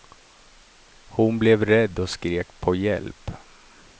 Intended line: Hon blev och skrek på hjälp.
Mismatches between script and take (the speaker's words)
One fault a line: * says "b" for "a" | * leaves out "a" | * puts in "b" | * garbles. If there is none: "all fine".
* puts in "rädd"